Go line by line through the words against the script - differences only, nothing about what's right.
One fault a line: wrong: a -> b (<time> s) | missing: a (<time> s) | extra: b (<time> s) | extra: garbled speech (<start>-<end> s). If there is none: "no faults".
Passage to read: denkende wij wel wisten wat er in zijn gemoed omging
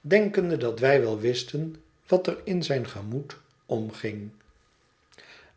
extra: dat (0.6 s)